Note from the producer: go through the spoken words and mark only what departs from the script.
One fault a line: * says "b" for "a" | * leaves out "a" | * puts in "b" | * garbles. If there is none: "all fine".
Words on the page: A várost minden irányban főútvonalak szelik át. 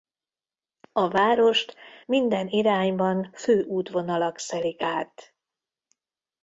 all fine